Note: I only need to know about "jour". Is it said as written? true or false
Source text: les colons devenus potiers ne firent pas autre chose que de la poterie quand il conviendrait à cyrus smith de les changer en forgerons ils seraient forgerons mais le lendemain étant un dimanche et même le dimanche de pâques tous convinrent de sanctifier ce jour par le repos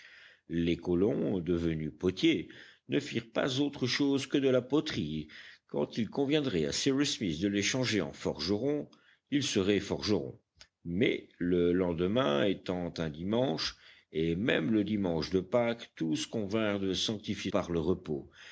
false